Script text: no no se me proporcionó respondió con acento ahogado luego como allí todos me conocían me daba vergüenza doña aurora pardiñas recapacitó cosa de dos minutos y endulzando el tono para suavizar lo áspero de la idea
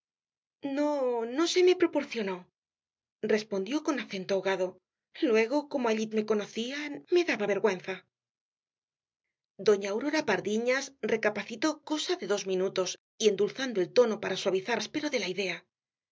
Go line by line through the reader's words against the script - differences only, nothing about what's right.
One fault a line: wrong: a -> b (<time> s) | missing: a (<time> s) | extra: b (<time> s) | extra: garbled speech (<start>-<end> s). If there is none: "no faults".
missing: todos (6.1 s)
missing: lo (14.8 s)